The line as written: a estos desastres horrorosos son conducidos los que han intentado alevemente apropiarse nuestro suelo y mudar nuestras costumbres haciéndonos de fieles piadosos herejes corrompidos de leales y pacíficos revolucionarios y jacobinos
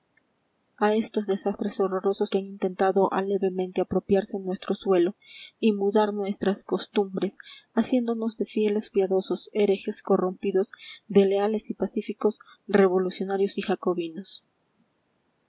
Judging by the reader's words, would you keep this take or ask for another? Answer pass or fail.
fail